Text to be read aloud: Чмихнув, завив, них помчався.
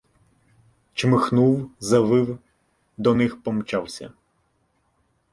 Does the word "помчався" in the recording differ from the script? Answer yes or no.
no